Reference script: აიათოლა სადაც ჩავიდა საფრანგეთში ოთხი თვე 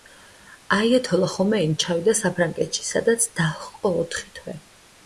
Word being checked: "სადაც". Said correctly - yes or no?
no